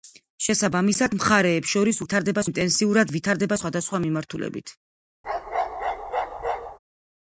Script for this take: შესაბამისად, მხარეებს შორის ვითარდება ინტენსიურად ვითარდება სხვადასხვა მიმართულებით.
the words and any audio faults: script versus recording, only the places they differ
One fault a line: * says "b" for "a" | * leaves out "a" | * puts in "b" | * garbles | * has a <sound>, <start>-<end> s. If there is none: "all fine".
* has a bark, 5.2-6.8 s